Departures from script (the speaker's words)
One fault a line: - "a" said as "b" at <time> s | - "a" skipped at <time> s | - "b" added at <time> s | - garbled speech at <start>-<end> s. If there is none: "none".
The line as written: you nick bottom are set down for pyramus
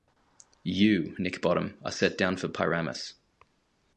none